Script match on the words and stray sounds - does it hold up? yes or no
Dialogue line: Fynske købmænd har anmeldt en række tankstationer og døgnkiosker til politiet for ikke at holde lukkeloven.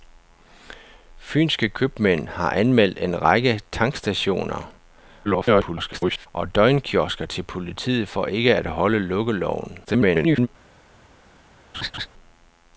no